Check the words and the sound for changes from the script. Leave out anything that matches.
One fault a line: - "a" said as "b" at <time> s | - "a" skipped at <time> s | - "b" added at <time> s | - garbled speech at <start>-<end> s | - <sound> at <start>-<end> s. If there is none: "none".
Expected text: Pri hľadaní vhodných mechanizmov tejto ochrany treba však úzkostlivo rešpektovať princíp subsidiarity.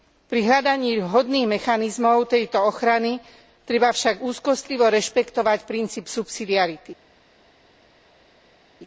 none